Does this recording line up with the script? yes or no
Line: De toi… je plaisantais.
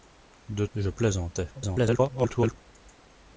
no